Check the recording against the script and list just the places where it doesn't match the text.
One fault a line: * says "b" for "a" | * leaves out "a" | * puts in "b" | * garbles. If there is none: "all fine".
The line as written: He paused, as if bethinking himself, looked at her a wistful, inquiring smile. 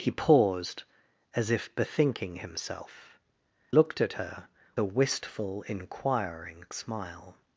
all fine